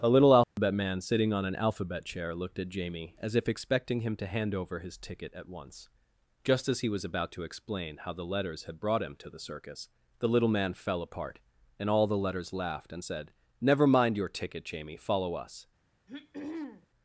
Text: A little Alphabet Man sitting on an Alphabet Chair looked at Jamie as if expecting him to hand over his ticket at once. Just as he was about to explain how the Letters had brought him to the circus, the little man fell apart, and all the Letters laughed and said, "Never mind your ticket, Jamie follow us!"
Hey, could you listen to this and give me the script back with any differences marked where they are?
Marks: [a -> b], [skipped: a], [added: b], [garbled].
A little Alphabet Man sitting on an Alphabet Chair looked at Jamie as if expecting him to hand over his ticket at once. Just as he was about to explain how the Letters had brought him to the circus, the little man fell apart, and all the Letters laughed and said, "Never mind your ticket, Jamie follow us!"